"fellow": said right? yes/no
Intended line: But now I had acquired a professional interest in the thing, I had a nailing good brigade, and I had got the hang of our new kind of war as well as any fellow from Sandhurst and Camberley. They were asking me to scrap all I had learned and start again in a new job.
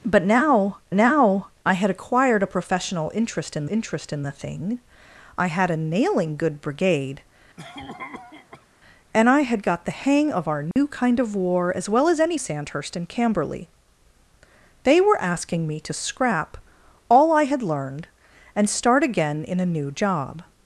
no